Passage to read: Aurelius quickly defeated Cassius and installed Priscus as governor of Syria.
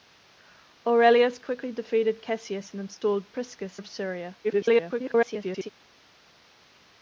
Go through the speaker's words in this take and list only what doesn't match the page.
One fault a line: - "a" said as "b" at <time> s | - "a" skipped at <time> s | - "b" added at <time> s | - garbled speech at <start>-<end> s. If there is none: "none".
- "as governor" skipped at 3.8 s
- garbled speech at 4.4-5.7 s